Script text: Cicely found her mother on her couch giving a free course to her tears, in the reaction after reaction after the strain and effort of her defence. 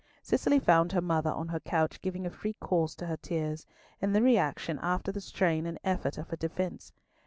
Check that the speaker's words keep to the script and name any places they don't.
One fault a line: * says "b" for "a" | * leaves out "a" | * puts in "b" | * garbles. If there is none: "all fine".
* leaves out "reaction after"